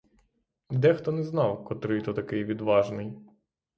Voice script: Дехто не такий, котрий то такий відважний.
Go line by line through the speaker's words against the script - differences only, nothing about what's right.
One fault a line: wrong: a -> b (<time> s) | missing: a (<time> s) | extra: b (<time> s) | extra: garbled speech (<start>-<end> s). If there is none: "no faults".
wrong: такий -> знав (1.2 s)